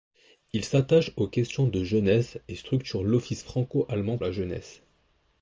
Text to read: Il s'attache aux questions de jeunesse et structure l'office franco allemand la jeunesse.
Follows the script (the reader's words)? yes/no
yes